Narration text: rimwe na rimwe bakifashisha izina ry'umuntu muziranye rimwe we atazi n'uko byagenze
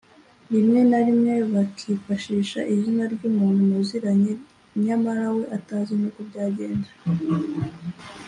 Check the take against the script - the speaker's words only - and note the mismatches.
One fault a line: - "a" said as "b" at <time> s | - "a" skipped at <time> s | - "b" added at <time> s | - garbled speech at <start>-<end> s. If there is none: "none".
- "rimwe" said as "nyamara" at 4.8 s